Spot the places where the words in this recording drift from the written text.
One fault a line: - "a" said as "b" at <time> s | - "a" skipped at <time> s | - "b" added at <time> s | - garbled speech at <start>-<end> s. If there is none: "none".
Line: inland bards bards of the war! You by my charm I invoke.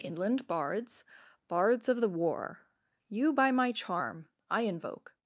none